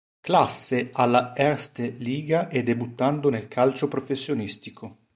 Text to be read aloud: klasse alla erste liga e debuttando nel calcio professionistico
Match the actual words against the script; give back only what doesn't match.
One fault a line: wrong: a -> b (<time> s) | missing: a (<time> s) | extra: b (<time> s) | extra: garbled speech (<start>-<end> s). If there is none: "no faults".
no faults